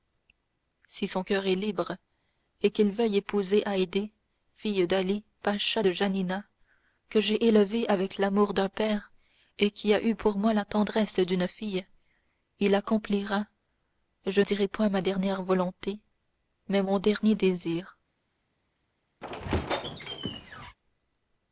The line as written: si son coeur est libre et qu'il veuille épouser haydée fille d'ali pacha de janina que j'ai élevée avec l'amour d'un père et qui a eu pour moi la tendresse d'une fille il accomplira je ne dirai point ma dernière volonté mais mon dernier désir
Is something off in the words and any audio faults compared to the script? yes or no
yes